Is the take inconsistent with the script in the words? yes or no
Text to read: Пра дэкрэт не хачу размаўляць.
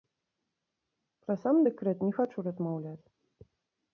yes